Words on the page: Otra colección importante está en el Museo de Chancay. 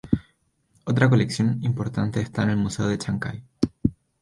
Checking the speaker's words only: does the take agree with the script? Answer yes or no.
yes